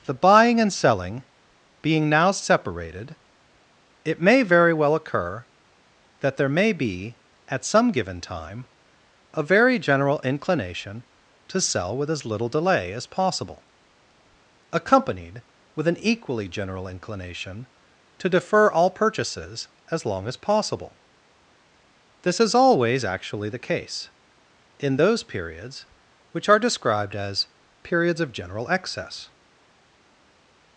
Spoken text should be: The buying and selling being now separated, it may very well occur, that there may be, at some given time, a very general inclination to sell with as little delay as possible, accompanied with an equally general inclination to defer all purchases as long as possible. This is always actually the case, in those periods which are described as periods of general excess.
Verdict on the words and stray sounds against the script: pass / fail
pass